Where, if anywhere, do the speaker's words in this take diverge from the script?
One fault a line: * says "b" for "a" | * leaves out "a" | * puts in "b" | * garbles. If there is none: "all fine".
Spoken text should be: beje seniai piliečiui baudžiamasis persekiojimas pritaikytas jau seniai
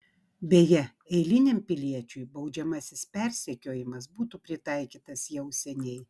* says "eiliniam" for "seniai"
* puts in "būtų"